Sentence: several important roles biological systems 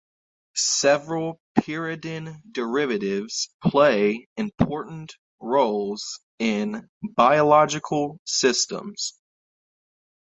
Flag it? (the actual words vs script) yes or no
yes